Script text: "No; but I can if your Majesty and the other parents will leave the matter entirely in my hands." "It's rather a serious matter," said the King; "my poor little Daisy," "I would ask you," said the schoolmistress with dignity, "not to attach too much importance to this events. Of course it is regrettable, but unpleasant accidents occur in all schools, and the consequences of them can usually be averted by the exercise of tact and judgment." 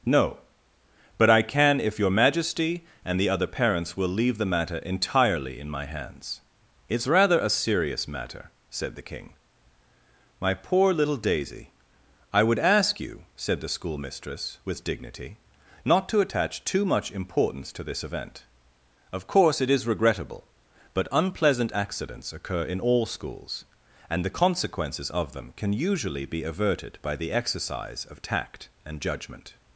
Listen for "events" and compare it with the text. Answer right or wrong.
wrong